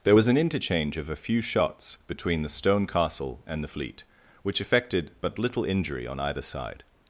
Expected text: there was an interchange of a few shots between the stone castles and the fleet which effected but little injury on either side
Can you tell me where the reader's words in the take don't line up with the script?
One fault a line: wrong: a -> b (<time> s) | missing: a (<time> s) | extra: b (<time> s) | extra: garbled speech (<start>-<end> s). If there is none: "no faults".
wrong: castles -> castle (2.9 s)